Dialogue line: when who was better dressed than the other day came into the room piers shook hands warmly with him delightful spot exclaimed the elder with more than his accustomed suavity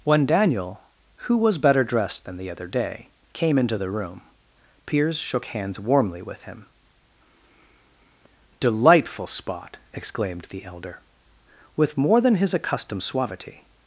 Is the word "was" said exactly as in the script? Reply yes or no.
yes